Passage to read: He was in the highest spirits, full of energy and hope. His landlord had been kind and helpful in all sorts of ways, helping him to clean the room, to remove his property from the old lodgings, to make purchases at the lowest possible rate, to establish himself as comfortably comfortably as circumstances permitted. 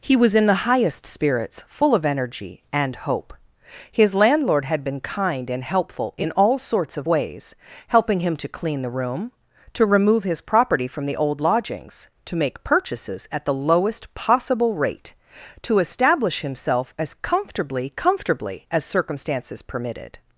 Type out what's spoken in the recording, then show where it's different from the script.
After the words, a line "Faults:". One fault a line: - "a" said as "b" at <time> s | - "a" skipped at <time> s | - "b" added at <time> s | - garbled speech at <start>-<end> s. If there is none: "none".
He was in the highest spirits, full of energy and hope. His landlord had been kind and helpful in all sorts of ways, helping him to clean the room, to remove his property from the old lodgings, to make purchases at the lowest possible rate, to establish himself as comfortably comfortably as circumstances permitted.
Faults:
none